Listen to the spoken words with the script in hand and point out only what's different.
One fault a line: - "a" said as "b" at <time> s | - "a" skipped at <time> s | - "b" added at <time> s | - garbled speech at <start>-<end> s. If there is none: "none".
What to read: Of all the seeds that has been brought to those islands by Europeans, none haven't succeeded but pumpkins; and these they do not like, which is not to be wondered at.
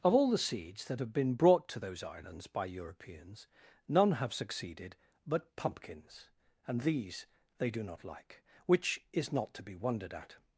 - "has" said as "have" at 1.0 s
- "haven't" said as "have" at 4.1 s